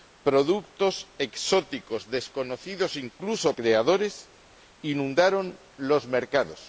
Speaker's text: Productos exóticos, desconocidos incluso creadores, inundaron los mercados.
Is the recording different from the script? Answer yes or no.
no